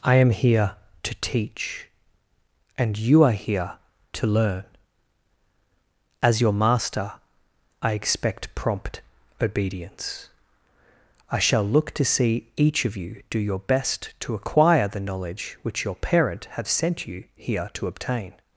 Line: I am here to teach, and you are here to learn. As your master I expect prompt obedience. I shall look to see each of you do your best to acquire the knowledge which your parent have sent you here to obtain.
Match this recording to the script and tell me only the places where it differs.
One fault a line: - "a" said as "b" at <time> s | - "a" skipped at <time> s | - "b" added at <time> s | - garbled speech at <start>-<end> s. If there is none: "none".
none